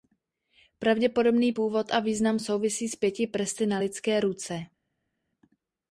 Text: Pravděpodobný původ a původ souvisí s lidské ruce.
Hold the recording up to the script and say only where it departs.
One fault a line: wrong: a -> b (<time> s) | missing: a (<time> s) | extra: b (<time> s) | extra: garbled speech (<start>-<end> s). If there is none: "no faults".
wrong: původ -> význam (2.0 s)
extra: pěti prsty na (2.9 s)